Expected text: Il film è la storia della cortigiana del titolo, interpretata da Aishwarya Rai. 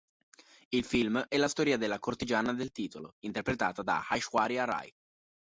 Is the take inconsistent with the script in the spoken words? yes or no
no